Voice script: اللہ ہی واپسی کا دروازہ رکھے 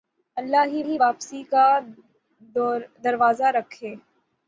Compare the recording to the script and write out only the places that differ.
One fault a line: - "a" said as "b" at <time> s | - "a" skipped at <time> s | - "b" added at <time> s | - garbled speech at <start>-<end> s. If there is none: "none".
- "ہی" added at 0.8 s